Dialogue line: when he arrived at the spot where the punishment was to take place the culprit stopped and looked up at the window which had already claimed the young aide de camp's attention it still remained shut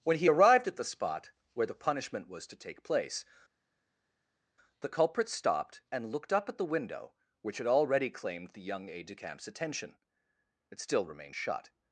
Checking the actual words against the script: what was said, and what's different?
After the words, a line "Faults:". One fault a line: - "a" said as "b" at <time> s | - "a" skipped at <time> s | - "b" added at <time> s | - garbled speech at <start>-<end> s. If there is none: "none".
when he arrived at the spot where the punishment was to take place the culprit stopped and looked up at the window which had already claimed the young aide de camp's attention it still remained shut
Faults:
none